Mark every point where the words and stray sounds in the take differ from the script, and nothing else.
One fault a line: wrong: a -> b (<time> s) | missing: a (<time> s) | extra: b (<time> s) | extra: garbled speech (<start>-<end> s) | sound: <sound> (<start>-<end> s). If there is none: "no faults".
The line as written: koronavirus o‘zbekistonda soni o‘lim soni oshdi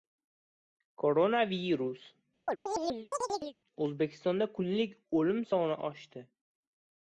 sound: chirp (2.5-3.6 s)
wrong: soni -> kunlik (4.6 s)